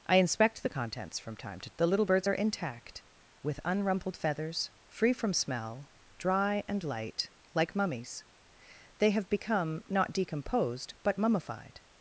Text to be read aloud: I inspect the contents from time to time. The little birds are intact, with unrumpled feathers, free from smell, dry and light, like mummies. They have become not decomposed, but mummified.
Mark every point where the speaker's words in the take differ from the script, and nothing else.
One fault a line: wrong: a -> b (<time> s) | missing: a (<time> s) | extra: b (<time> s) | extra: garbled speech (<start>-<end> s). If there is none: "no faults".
missing: time (1.7 s)